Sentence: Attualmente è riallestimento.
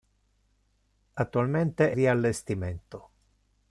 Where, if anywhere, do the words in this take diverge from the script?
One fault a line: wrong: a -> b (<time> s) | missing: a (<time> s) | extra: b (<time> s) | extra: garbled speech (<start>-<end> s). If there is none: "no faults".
no faults